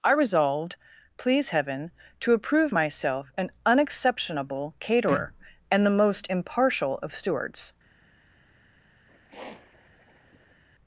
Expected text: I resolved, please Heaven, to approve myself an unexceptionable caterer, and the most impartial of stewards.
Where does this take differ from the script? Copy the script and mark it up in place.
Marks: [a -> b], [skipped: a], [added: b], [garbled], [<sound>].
I resolved, please Heaven, to approve myself an unexceptionable caterer, and the most impartial of stewards. [sniff]